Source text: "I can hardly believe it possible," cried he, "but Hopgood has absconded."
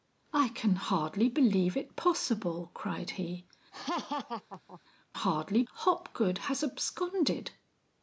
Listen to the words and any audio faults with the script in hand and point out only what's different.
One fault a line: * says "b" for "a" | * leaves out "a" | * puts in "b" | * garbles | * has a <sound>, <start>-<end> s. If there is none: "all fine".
* has a laugh, 3.7-4.8 s
* says "hardly" for "but"